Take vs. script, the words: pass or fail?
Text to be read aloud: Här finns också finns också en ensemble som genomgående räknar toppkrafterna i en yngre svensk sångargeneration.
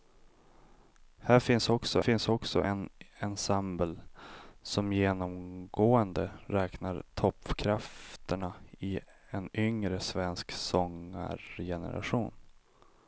pass